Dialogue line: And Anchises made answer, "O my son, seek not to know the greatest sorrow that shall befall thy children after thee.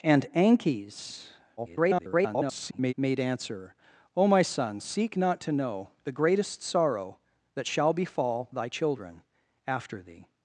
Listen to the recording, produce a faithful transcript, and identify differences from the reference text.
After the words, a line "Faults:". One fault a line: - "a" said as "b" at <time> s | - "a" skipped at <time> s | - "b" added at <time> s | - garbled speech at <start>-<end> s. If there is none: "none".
And Anchises [garbled] made answer, "O my son, seek not to know the greatest sorrow that shall befall thy children after thee.
Faults:
- garbled speech at 1.6-2.9 s